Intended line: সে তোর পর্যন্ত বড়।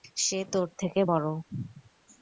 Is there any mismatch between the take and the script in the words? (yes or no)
yes